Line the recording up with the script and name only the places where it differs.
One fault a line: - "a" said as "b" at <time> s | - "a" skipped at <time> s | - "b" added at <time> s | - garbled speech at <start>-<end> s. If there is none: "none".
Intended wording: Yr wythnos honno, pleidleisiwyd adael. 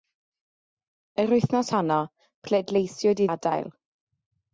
none